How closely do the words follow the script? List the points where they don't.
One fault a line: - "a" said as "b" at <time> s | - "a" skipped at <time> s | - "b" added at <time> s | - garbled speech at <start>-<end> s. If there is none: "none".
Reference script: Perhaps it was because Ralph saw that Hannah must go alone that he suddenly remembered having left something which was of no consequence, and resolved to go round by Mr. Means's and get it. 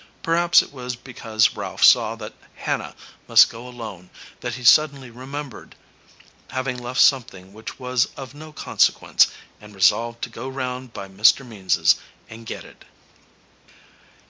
none